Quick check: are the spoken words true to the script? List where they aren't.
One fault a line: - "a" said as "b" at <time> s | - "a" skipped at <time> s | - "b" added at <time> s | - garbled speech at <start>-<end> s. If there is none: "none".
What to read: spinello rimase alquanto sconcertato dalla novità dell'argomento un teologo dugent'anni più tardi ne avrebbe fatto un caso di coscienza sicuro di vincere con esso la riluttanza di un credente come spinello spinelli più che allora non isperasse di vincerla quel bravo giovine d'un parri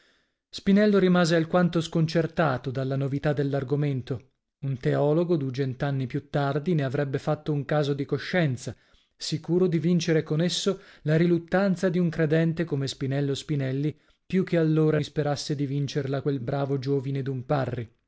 - "non" skipped at 15.0 s